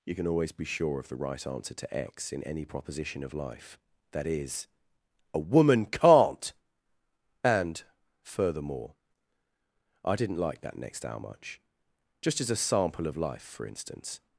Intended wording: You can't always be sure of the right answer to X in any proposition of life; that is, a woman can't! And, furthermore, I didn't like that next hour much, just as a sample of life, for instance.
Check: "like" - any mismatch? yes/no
no